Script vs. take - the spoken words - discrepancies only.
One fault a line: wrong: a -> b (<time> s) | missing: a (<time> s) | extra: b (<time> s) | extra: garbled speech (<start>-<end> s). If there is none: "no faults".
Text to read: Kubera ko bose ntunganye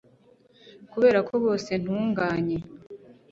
no faults